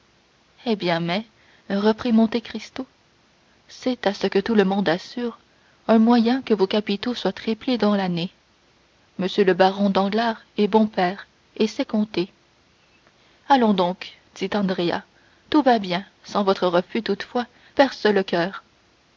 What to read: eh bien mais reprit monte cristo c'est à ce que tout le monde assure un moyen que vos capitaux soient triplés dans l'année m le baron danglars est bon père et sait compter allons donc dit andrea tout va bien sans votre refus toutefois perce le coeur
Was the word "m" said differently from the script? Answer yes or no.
no